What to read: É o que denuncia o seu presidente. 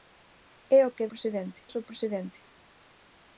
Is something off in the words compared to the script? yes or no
yes